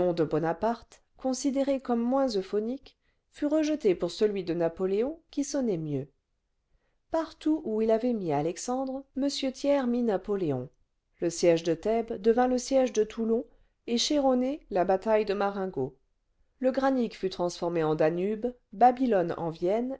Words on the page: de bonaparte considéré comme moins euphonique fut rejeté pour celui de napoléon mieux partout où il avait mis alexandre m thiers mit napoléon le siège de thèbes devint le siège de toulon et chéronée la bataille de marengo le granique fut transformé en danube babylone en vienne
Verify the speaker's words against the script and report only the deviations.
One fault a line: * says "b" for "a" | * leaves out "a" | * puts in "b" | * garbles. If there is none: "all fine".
* puts in "qui sonnait"